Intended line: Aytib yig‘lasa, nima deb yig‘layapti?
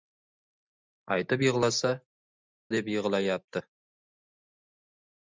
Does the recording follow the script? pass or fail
fail